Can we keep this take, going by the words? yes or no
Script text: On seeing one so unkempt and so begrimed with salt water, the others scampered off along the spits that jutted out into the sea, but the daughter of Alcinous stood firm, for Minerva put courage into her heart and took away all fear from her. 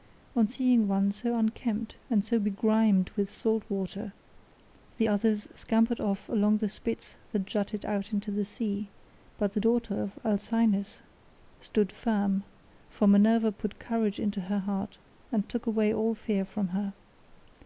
yes